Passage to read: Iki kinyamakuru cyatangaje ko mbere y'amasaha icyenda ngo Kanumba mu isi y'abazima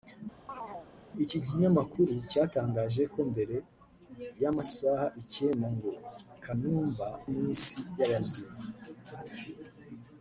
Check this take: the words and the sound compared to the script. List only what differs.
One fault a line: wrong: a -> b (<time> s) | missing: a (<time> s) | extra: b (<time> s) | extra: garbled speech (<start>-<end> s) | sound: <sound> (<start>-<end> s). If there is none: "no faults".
sound: chirp (0.5-0.9 s)